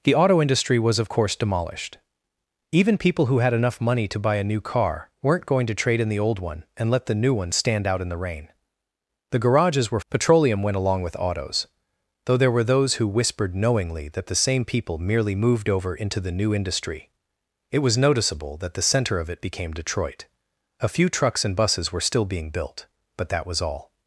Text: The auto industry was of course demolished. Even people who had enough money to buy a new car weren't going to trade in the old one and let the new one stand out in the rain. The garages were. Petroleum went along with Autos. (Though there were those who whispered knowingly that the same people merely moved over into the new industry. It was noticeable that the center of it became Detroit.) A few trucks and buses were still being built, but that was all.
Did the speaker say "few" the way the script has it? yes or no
yes